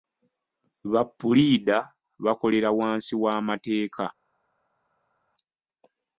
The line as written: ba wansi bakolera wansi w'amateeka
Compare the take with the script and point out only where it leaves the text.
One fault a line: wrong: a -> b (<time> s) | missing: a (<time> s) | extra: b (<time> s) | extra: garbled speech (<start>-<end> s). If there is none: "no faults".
wrong: wansi -> puliida (1.2 s)